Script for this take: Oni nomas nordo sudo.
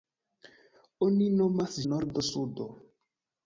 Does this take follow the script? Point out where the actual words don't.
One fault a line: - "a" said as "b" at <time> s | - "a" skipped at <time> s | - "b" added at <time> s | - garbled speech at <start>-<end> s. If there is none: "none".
none